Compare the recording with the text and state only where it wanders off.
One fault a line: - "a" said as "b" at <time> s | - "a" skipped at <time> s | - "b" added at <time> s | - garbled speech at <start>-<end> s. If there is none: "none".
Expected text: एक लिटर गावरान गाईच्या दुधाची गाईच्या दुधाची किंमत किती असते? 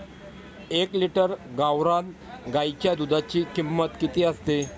- "गाईच्या दुधाची" skipped at 3.4 s